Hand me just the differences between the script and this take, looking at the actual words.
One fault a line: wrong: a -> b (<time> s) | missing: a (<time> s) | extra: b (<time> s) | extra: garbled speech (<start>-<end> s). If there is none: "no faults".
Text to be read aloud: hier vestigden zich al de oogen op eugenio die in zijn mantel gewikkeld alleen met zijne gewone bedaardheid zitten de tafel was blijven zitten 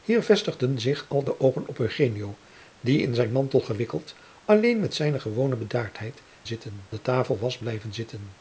no faults